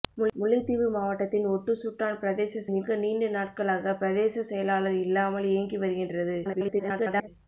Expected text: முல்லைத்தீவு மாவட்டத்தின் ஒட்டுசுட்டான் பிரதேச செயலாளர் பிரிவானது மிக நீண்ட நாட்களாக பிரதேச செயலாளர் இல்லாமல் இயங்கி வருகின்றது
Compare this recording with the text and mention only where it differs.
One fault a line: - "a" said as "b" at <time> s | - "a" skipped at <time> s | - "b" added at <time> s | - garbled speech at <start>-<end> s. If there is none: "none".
- "செயலாளர் பிரிவானது" skipped at 2.6 s
- garbled speech at 6.4-7.3 s